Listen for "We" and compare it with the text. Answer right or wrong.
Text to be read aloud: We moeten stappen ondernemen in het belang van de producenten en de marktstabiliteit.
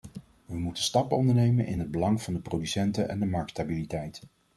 right